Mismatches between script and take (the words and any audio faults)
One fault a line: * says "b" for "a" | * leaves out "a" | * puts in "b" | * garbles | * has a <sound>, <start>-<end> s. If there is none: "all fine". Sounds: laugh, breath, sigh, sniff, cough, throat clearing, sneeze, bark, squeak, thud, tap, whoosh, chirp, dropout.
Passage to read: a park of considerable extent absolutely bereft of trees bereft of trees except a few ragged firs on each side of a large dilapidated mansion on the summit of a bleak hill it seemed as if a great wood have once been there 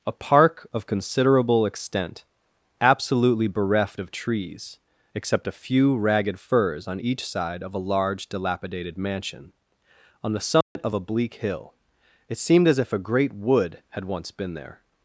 * leaves out "bereft of trees"
* has a dropout, 10.6-10.8 s
* says "had" for "have"